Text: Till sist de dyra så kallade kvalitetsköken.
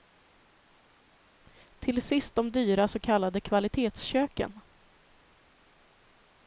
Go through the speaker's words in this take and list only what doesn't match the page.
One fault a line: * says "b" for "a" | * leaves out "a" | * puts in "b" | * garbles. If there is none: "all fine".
all fine